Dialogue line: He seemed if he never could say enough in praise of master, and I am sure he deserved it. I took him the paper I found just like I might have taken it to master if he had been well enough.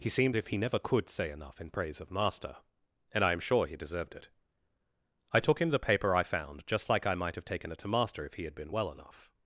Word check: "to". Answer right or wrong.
right